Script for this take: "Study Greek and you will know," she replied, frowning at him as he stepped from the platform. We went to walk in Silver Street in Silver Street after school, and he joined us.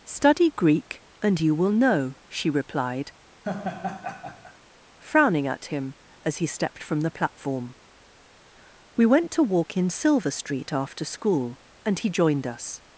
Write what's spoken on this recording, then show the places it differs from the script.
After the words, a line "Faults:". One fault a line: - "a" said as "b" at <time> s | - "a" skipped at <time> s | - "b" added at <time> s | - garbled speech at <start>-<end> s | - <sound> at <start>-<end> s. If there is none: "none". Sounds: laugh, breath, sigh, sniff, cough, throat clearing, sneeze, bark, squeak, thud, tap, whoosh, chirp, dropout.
"Study Greek and you will know," she replied, frowning at him as he stepped from the platform. We went to walk in Silver Street after school, and he joined us.
Faults:
- laugh at 3.4-4.6 s
- "in Silver Street" skipped at 10.7 s